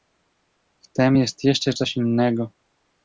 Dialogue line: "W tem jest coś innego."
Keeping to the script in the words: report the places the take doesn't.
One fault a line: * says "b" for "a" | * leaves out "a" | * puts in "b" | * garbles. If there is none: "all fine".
* puts in "jeszcze"